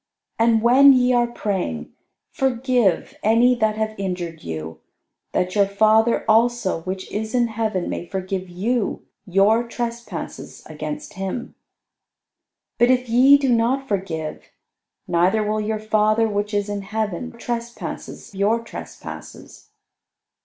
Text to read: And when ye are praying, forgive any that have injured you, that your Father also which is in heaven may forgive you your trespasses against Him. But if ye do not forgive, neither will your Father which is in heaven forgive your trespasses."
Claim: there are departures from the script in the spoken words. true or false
true